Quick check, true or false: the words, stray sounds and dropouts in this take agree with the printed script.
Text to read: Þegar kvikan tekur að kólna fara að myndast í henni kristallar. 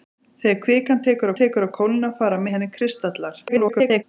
false